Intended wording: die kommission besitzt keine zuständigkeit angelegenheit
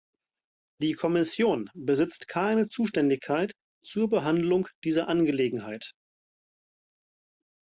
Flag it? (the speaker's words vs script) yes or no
yes